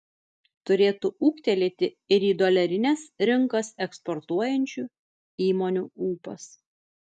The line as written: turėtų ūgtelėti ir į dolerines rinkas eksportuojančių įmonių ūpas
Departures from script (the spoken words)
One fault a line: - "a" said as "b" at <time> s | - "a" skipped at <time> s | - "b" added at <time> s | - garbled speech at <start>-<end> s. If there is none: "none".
none